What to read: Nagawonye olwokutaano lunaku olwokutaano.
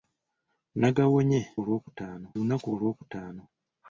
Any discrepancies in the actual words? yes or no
no